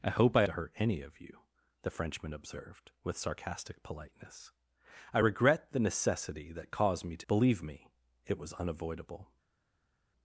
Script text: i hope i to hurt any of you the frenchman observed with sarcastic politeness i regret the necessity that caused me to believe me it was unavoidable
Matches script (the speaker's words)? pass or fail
pass